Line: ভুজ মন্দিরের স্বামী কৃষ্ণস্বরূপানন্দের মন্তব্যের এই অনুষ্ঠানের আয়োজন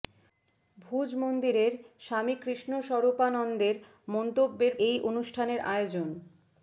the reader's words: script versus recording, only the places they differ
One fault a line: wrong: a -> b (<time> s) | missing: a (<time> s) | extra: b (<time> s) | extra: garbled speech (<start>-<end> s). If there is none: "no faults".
no faults